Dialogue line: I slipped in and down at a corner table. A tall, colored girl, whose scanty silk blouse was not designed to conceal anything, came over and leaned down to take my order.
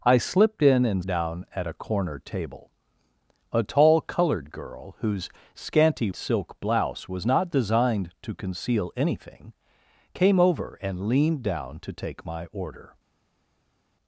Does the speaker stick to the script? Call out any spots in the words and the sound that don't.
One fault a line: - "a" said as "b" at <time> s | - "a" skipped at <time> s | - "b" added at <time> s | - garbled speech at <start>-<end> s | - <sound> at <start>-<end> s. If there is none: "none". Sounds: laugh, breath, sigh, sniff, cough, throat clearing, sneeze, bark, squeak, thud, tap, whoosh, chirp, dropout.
none